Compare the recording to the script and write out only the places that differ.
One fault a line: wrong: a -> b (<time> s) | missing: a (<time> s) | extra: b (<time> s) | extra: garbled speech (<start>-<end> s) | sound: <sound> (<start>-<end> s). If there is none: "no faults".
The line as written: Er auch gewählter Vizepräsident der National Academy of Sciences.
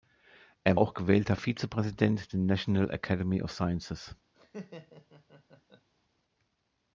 sound: laugh (4.3-5.9 s)